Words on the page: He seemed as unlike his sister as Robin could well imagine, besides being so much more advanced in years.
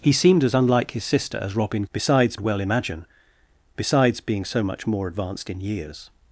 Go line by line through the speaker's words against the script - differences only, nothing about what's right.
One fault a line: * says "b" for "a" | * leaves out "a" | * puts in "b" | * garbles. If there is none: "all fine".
* says "besides" for "could"